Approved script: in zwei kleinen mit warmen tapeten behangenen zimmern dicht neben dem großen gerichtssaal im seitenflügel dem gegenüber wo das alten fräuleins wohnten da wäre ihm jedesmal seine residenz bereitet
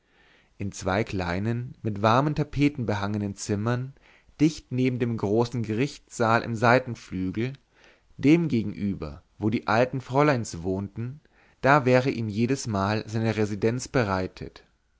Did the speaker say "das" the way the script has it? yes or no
no